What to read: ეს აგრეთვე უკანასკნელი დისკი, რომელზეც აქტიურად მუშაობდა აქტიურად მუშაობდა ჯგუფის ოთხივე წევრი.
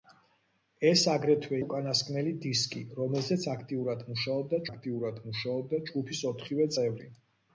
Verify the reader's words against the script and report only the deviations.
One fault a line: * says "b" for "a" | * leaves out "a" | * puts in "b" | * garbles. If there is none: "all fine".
all fine